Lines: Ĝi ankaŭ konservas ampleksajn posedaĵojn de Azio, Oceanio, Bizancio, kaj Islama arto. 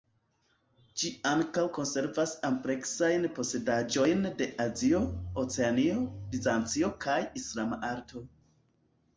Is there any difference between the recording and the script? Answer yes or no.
no